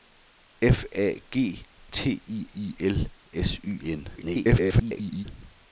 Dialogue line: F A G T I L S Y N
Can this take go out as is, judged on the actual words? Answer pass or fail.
fail